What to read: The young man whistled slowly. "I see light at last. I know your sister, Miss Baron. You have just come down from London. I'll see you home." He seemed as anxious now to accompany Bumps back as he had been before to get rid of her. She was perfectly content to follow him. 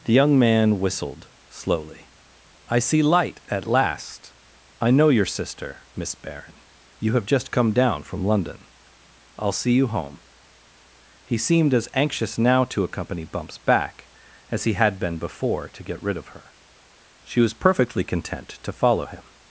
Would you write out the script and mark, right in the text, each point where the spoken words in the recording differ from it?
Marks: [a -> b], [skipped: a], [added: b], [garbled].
The young man whistled slowly. "I see light at last. I know your sister, Miss Baron. You have just come down from London. I'll see you home." He seemed as anxious now to accompany Bumps back as he had been before to get rid of her. She was perfectly content to follow him.